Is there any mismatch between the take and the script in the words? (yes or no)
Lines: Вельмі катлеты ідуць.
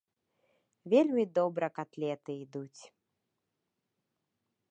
yes